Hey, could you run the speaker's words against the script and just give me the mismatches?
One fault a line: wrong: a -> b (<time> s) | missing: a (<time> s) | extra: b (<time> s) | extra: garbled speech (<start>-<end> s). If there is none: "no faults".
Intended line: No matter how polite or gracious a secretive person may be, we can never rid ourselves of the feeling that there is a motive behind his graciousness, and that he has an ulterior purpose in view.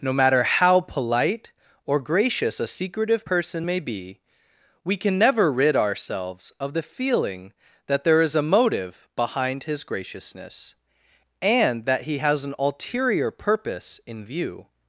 no faults